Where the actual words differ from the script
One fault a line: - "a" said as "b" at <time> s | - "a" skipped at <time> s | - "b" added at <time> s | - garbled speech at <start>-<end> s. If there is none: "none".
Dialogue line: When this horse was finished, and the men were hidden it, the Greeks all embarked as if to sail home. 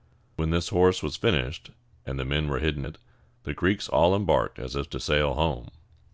none